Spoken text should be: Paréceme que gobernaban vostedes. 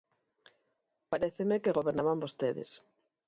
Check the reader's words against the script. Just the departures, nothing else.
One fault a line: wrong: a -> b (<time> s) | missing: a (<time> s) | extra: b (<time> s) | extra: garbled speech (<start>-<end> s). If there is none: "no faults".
no faults